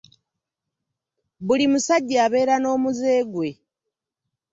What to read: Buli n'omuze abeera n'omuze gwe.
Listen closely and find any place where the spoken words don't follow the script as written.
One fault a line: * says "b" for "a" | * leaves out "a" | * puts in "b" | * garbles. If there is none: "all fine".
* says "musajja" for "n'omuze"